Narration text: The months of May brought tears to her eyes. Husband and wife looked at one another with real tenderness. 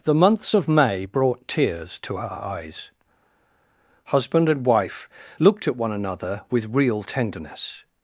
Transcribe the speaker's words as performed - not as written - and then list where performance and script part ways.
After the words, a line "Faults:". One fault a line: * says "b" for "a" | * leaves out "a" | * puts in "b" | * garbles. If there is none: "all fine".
The months of May brought tears to her eyes. Husband and wife looked at one another with real tenderness.
Faults:
all fine